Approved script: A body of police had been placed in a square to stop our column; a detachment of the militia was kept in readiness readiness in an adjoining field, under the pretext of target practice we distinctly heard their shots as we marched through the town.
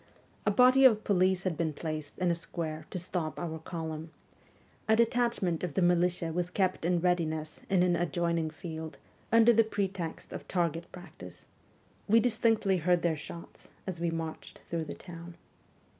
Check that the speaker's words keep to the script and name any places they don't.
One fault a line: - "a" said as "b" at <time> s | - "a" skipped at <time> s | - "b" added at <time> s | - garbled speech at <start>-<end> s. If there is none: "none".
- "readiness" skipped at 7.6 s